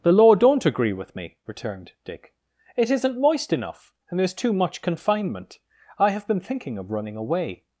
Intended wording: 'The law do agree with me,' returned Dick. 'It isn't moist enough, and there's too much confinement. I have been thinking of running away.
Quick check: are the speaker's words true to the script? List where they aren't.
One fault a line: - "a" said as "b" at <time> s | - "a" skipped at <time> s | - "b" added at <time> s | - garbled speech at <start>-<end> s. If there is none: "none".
- "do" said as "don't" at 0.3 s